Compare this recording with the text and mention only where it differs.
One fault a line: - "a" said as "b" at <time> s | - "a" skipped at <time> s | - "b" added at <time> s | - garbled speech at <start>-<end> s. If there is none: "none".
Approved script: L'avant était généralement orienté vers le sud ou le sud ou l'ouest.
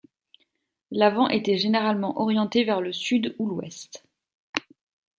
- "le sud ou" skipped at 3.5 s